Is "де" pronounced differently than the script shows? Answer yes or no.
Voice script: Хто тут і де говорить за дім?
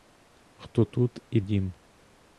yes